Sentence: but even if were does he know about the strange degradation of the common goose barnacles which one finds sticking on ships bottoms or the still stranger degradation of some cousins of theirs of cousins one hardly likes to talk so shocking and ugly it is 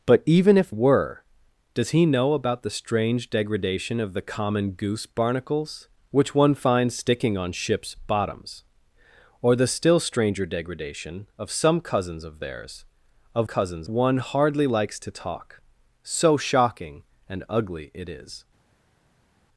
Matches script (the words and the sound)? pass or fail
pass